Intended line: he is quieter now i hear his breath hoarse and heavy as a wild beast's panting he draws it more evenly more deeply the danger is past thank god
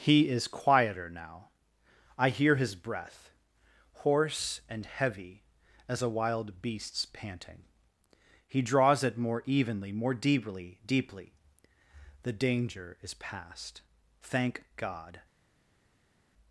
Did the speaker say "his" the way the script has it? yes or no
yes